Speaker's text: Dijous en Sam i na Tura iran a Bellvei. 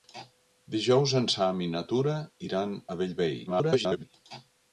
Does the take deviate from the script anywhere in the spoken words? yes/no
yes